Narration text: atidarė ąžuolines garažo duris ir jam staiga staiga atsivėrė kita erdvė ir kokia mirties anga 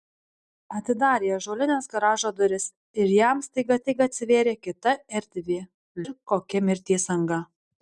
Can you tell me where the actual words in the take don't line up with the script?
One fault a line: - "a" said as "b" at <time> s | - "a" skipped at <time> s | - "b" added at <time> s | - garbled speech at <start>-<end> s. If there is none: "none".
none